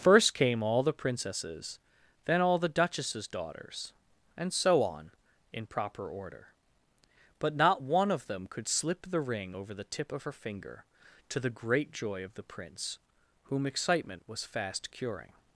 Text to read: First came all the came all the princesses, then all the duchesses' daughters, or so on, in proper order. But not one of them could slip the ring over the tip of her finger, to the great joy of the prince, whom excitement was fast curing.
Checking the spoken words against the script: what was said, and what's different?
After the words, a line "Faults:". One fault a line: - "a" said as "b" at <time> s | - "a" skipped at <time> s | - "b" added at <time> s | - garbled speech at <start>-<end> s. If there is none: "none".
First came all the princesses, then all the duchesses' daughters, and so on, in proper order. But not one of them could slip the ring over the tip of her finger, to the great joy of the prince, whom excitement was fast curing.
Faults:
- "came all the" skipped at 0.9 s
- "or" said as "and" at 4.3 s